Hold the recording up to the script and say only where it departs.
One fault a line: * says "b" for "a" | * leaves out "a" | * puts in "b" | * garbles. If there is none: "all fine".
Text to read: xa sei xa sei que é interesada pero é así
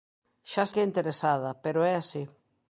* leaves out "sei xa sei"